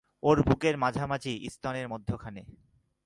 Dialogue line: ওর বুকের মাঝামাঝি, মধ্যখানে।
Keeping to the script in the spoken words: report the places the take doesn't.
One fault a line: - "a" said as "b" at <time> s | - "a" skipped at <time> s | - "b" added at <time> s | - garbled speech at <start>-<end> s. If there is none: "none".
- "স্তনের" added at 1.5 s